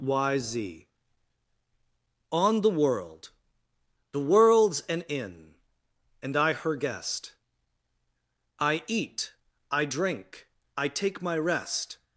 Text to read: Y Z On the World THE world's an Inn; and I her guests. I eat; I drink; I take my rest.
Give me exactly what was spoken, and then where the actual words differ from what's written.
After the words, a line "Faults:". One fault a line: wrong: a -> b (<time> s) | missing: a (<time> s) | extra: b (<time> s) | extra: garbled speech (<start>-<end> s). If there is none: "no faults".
Y Z On the World THE world's an Inn; and I her guest. I eat; I drink; I take my rest.
Faults:
wrong: guests -> guest (6.8 s)